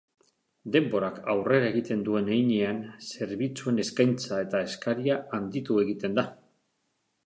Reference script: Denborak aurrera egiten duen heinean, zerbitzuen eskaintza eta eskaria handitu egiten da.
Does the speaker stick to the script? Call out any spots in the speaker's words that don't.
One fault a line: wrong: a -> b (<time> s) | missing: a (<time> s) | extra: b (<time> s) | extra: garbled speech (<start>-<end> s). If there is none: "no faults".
no faults